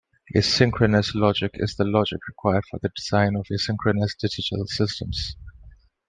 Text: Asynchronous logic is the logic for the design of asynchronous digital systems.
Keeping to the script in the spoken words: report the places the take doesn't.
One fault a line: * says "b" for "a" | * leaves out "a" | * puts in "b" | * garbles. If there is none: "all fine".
* puts in "required"